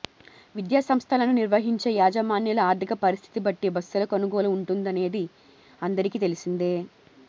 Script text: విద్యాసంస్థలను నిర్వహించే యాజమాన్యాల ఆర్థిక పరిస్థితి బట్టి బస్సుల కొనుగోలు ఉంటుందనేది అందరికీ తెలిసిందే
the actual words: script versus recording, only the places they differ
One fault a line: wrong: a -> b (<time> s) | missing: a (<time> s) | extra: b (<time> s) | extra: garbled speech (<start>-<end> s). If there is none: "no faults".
no faults